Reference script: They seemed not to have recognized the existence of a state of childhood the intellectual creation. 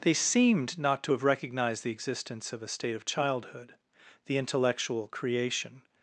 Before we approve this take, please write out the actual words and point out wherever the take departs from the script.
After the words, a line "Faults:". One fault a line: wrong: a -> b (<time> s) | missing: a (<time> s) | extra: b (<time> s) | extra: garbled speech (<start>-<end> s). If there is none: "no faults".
They seemed not to have recognized the existence of a state of childhood the intellectual creation.
Faults:
no faults